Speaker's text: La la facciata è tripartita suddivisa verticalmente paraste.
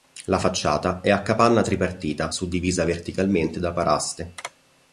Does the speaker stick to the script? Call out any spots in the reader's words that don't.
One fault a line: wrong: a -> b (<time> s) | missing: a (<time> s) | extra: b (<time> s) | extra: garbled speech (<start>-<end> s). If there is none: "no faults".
missing: la (0.4 s)
extra: a capanna (1.1 s)
extra: da (3.6 s)